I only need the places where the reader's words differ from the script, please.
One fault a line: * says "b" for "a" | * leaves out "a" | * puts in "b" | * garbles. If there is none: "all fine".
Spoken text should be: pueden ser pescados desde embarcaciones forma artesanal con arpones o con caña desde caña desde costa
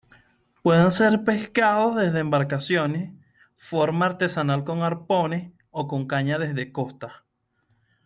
* leaves out "caña desde"